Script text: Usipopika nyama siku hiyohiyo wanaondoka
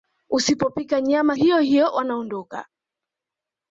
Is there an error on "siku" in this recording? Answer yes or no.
yes